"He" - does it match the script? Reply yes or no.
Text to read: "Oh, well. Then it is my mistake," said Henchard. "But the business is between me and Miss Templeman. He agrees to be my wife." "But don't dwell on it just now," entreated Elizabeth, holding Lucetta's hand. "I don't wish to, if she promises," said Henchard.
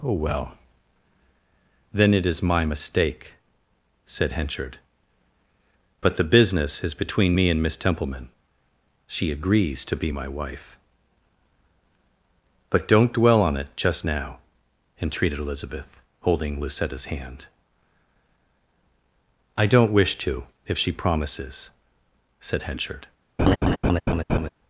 no